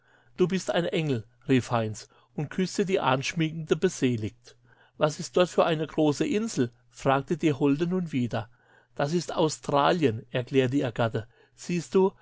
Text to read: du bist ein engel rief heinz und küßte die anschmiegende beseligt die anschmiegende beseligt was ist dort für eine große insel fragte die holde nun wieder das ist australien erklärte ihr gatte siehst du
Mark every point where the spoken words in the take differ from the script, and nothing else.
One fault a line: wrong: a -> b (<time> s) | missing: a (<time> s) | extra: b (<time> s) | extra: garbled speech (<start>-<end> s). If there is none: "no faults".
missing: die anschmiegende beseligt (4.5 s)